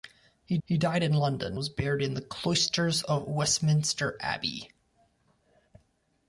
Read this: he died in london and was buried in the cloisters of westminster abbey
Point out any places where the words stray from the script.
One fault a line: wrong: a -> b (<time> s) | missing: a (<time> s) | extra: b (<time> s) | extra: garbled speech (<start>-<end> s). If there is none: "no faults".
extra: he (0.6 s)
missing: and (1.6 s)